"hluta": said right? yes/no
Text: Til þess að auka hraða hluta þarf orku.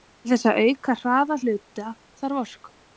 yes